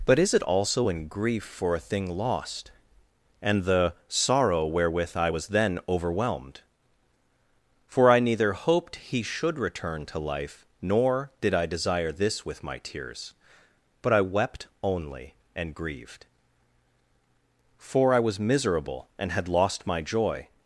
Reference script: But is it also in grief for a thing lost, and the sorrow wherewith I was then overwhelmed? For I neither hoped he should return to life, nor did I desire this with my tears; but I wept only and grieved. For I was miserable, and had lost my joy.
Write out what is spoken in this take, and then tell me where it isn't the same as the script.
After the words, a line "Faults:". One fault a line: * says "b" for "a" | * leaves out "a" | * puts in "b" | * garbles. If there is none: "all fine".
But is it also in grief for a thing lost, and the sorrow wherewith I was then overwhelmed? For I neither hoped he should return to life, nor did I desire this with my tears; but I wept only and grieved. For I was miserable, and had lost my joy.
Faults:
all fine